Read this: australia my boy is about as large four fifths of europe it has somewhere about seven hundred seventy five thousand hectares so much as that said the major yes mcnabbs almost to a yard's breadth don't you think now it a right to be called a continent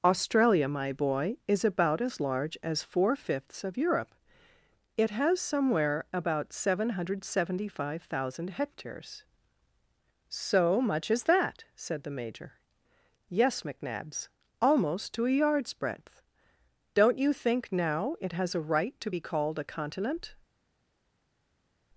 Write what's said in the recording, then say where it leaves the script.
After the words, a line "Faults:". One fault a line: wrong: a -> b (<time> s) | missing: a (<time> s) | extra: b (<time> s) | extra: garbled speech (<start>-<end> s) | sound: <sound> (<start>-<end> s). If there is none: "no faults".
australia my boy is about as large as four fifths of europe it has somewhere about seven hundred seventy five thousand hectares so much as that said the major yes mcnabbs almost to a yard's breadth don't you think now it has a right to be called a continent
Faults:
extra: as (2.6 s)
extra: has (18.3 s)